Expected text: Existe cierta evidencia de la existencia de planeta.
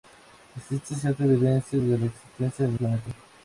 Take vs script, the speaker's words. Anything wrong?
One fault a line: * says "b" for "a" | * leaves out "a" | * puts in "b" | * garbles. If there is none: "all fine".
all fine